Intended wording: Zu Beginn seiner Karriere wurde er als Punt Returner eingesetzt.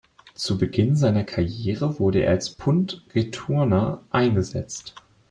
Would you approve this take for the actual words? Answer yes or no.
yes